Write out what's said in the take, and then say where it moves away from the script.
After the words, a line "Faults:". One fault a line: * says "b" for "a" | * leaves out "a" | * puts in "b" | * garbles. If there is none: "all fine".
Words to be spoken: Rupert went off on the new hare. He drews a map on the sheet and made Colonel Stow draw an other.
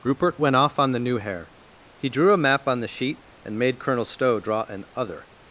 Rupert went off on the new hare. He drew a map on the sheet and made Colonel Stow draw an other.
Faults:
* says "drew" for "drews"